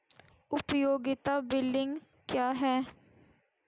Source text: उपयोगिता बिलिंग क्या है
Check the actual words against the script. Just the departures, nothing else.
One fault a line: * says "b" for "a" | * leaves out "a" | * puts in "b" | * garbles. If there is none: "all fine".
all fine